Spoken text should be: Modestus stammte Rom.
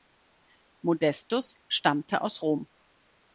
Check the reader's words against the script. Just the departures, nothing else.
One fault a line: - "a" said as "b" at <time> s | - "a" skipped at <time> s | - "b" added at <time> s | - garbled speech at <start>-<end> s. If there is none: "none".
- "aus" added at 2.2 s